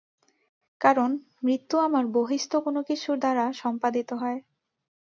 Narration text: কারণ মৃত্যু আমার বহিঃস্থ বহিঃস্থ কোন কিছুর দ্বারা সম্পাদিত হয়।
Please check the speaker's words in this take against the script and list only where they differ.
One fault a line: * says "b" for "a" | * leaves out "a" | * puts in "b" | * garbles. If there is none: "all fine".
* leaves out "বহিঃস্থ"